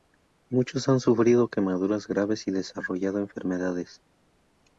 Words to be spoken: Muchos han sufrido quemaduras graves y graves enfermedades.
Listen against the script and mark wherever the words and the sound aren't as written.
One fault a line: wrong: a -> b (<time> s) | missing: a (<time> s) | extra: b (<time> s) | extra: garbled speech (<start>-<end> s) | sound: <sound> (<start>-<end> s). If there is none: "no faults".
wrong: graves -> desarrollado (2.5 s)